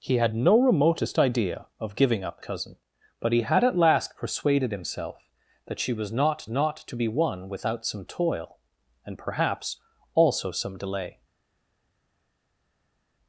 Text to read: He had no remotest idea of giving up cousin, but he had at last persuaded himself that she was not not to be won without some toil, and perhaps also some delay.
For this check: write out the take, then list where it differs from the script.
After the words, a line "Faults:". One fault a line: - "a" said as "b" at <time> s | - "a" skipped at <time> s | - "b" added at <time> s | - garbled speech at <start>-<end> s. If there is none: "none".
He had no remotest idea of giving up cousin, but he had at last persuaded himself that she was not not to be won without some toil, and perhaps also some delay.
Faults:
none